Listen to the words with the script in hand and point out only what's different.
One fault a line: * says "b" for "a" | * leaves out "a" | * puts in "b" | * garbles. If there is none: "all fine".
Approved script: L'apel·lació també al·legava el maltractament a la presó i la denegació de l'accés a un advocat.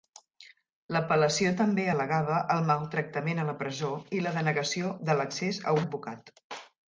* leaves out "un"